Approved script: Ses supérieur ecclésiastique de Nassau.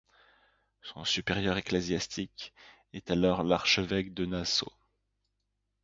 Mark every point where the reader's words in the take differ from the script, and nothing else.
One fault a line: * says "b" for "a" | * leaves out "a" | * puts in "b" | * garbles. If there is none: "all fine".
* says "Son" for "Ses"
* puts in "est alors l'archevêque"